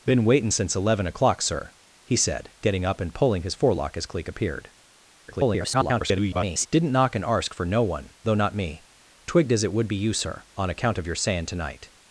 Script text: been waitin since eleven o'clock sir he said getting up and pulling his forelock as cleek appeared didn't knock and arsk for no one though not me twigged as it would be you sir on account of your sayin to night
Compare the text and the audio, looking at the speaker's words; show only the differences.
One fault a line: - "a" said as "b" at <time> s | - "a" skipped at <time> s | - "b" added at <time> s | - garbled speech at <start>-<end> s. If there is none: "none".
- garbled speech at 5.3-6.7 s